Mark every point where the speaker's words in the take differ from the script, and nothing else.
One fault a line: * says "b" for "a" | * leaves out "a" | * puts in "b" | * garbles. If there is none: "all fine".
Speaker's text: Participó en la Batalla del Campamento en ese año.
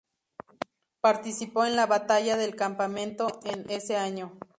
all fine